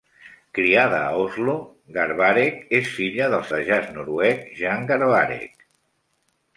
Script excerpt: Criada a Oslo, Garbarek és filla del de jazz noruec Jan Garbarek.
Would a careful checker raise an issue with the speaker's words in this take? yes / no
no